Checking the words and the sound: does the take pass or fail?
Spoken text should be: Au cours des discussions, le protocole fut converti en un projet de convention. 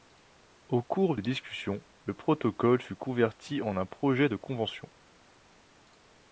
pass